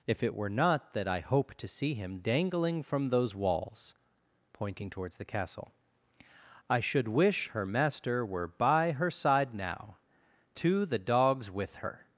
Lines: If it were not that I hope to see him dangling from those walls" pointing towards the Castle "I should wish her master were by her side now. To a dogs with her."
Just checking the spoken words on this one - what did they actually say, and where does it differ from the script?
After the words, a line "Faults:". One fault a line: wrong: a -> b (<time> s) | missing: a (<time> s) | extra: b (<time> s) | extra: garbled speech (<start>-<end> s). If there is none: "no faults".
If it were not that I hope to see him dangling from those walls" pointing towards the Castle "I should wish her master were by her side now. To the dogs with her."
Faults:
wrong: a -> the (10.8 s)